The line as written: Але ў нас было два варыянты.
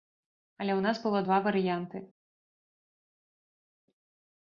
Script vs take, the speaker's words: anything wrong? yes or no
no